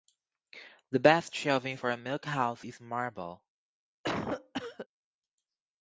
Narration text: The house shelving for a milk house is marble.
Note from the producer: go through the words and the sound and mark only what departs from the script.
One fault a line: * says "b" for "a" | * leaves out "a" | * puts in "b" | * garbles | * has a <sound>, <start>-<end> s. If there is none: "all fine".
* says "best" for "house"
* has a cough, 4.0-4.9 s